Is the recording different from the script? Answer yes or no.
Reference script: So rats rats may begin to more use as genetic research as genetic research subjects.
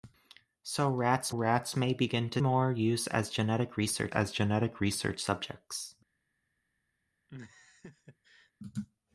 no